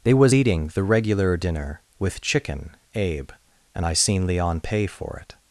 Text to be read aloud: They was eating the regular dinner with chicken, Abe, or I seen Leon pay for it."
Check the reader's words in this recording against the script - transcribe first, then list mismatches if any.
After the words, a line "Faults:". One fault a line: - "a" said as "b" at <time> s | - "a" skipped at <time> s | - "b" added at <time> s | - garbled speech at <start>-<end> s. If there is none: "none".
They was eating the regular dinner with chicken, Abe, and I seen Leon pay for it."
Faults:
- "or" said as "and" at 3.7 s